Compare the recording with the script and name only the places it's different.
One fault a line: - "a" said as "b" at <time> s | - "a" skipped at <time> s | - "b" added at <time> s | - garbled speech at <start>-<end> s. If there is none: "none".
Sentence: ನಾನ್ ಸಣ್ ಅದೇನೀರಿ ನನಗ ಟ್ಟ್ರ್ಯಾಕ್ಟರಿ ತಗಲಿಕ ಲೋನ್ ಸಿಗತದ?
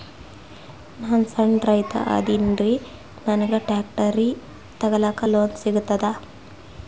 - "ರೈತ" added at 1.6 s